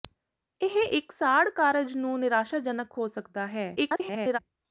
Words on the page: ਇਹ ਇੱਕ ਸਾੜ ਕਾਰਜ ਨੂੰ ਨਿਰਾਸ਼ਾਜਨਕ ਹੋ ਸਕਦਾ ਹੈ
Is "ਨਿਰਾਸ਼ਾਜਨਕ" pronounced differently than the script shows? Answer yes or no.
no